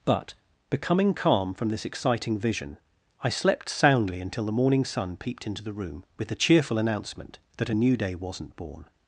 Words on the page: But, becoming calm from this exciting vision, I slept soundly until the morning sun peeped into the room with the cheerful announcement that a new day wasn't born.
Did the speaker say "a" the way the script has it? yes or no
yes